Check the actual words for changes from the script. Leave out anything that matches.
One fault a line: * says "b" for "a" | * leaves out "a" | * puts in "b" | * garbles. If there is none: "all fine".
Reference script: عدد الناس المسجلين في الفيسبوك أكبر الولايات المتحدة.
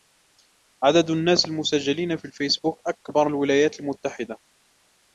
all fine